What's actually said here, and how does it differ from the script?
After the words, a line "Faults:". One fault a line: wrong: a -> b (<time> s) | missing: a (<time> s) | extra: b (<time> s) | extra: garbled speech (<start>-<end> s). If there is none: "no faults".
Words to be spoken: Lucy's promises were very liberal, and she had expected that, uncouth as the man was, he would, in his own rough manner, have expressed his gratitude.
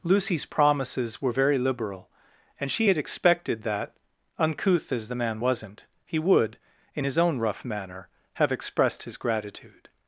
Lucy's promises were very liberal, and she had expected that, uncouth as the man wasn't, he would, in his own rough manner, have expressed his gratitude.
Faults:
wrong: was -> wasn't (5.4 s)